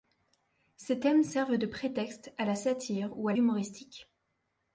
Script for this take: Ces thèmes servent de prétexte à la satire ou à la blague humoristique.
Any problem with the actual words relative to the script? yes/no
yes